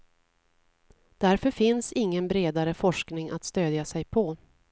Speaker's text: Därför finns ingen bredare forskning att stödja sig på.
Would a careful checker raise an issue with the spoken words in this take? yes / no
no